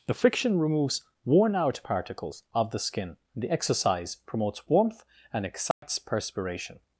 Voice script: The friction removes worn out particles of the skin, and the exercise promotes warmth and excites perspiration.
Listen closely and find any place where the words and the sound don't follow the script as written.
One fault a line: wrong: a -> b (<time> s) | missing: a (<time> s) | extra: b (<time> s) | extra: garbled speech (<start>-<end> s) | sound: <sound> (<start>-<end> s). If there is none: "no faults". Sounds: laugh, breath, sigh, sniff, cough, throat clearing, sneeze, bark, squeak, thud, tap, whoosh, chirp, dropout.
missing: and (3.2 s)
sound: dropout (5.7-5.8 s)